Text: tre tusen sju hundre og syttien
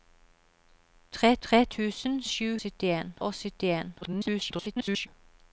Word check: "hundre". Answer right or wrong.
wrong